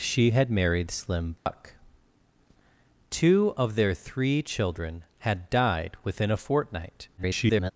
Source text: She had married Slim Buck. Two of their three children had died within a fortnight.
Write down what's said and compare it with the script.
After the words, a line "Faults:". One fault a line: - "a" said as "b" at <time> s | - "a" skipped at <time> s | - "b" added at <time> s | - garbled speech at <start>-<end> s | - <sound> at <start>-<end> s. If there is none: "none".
She had married Slim Buck. Two of their three children had died within a fortnight. [garbled]
Faults:
- dropout at 1.4-1.5 s
- garbled speech at 7.2-7.7 s